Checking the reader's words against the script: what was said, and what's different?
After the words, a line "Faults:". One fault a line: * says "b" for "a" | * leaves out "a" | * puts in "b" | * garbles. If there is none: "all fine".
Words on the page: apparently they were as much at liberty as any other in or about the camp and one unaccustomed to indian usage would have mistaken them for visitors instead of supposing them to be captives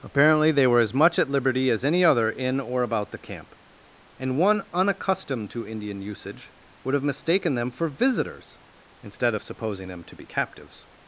apparently they were as much at liberty as any other in or about the camp and one unaccustomed to indian usage would have mistaken them for visitors instead of supposing them to be captives
Faults:
all fine